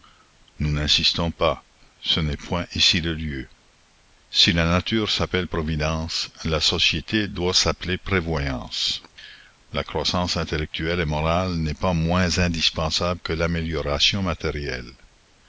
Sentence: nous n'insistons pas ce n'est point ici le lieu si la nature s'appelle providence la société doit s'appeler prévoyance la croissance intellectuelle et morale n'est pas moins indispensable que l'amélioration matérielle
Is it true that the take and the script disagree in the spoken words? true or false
false